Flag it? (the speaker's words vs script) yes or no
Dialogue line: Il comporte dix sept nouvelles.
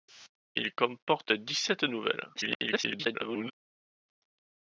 yes